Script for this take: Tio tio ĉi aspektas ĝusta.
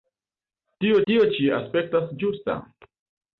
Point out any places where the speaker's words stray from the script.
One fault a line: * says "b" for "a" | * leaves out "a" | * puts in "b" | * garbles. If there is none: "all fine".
all fine